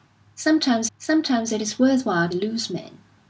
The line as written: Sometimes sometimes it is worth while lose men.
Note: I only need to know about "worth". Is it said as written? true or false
true